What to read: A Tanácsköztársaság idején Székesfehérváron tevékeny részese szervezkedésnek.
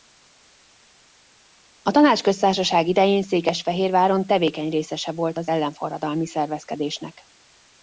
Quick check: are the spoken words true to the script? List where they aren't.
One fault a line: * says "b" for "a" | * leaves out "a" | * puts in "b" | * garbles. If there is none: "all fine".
* puts in "volt az ellenforradalmi"